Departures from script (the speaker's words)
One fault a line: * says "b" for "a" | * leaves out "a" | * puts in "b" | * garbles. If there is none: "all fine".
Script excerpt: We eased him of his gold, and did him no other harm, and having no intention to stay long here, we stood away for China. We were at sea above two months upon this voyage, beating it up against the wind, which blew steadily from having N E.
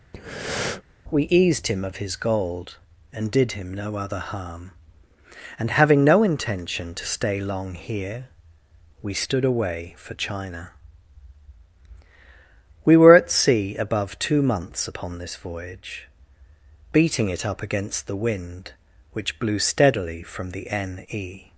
* says "the" for "having"